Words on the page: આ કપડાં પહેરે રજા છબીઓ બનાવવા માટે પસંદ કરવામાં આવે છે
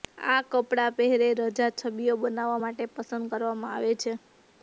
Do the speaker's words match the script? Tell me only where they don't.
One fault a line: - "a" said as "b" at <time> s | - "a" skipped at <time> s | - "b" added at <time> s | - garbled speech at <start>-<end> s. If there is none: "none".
none